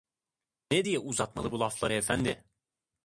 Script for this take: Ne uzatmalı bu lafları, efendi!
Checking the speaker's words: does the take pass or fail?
fail